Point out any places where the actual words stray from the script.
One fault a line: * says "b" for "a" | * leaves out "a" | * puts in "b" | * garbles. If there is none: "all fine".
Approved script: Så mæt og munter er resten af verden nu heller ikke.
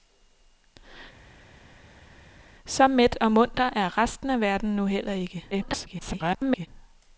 * garbles